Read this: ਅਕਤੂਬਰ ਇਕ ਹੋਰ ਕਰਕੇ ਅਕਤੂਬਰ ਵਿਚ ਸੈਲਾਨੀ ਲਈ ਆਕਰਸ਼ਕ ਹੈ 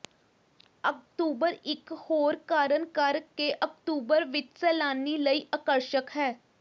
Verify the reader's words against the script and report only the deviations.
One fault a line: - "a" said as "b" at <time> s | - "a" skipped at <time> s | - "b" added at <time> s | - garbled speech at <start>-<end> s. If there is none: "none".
- "ਕਾਰਨ" added at 2.5 s